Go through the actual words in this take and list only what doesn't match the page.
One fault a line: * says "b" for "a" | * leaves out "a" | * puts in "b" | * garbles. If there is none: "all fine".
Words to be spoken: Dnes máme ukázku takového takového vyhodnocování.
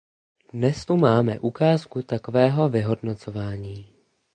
* puts in "tu"
* leaves out "takového"